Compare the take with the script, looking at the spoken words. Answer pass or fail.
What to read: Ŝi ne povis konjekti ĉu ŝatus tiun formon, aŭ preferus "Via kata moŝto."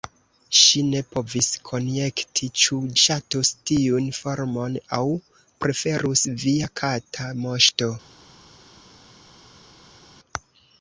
pass